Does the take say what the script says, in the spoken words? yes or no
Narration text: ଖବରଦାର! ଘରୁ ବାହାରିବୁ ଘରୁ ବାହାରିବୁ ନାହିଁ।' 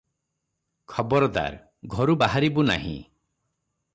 no